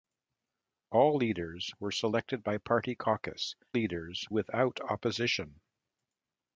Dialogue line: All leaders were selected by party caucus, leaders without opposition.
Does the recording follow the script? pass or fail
pass